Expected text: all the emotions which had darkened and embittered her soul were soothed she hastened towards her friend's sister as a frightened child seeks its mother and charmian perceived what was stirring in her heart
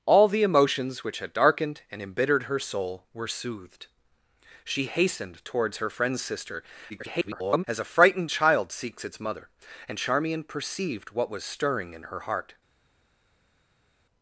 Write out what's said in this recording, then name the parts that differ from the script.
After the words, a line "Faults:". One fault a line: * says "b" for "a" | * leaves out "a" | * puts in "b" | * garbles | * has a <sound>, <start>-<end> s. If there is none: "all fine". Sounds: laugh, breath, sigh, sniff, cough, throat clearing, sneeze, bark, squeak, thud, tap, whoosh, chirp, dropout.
all the emotions which had darkened and embittered her soul were soothed she hastened towards her friend's sister [garbled] as a frightened child seeks its mother and charmian perceived what was stirring in her heart
Faults:
* garbles